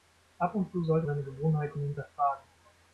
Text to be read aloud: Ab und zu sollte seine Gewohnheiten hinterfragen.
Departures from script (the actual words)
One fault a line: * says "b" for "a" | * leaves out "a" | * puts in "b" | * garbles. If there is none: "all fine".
all fine